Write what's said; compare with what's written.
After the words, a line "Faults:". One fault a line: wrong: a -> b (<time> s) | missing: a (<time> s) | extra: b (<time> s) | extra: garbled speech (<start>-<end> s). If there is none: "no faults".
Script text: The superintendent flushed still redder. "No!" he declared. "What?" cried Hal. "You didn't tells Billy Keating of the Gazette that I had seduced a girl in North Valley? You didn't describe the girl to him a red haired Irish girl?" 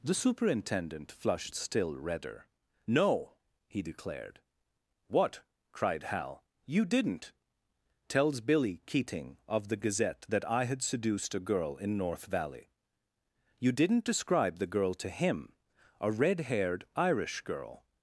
The superintendent flushed still redder. "No!" he declared. "What?" cried Hal. "You didn't tells Billy Keating of the Gazette that I had seduced a girl in North Valley? You didn't describe the girl to him a red haired Irish girl?"
Faults:
no faults